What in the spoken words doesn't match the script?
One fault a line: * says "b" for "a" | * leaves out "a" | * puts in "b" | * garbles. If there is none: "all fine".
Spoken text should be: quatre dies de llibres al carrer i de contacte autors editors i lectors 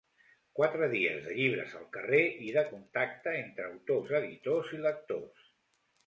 * puts in "entre"